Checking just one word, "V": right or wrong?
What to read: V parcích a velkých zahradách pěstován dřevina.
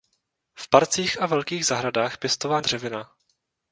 right